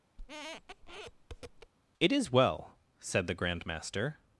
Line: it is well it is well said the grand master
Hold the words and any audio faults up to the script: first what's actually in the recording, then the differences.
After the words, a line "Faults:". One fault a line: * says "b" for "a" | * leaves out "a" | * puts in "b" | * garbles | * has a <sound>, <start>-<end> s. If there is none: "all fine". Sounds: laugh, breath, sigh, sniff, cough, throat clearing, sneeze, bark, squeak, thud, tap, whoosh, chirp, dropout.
it is well said the grand master
Faults:
* has a squeak, 0.2-1.7 s
* leaves out "it is well"